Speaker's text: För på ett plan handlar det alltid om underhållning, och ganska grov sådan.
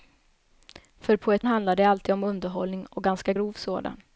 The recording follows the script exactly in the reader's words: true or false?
false